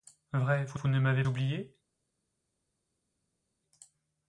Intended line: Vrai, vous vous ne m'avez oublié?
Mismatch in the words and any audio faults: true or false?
false